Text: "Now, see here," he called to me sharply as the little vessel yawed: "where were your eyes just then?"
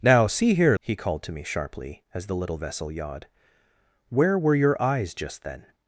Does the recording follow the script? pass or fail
pass